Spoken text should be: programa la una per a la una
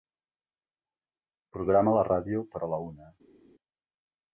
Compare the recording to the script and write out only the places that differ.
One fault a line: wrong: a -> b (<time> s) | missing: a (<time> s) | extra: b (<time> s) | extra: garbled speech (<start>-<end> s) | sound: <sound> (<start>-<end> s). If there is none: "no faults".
wrong: una -> ràdio (2.1 s)